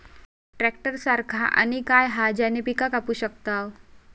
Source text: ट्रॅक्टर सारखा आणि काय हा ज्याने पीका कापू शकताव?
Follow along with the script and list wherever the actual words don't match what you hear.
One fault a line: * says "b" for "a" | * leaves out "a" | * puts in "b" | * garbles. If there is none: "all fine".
all fine